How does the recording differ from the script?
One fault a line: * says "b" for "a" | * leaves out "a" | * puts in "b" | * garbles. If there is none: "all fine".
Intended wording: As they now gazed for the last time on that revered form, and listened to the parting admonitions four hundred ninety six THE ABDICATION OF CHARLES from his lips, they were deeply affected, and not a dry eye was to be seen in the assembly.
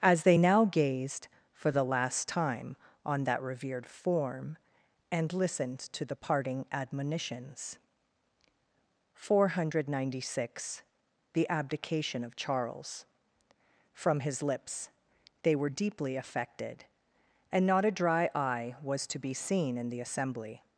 all fine